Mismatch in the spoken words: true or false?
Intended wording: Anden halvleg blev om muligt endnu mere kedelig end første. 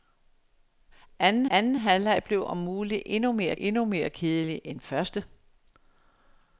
true